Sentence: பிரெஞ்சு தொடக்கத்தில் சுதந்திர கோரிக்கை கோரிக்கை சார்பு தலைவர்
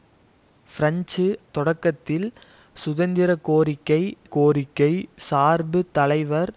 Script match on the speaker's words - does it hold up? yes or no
yes